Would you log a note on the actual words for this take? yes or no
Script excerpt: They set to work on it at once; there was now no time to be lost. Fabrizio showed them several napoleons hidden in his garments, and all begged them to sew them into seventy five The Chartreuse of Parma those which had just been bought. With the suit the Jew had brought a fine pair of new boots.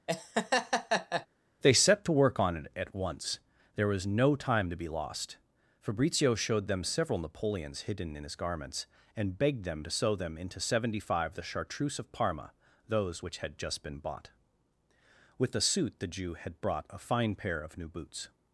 yes